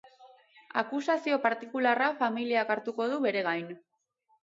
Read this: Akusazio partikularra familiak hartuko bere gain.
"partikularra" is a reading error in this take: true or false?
false